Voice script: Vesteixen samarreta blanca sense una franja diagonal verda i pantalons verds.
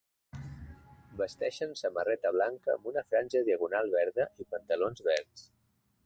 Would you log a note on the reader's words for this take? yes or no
yes